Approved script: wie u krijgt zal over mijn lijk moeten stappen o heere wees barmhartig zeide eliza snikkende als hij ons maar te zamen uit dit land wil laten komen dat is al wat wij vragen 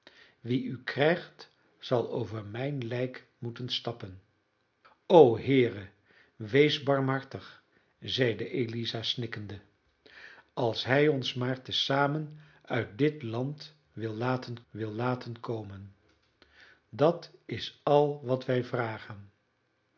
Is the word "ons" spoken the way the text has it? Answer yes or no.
yes